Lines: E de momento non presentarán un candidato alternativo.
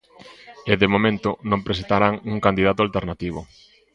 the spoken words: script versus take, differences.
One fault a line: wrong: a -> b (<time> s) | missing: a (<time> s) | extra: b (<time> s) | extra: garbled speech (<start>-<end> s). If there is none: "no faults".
no faults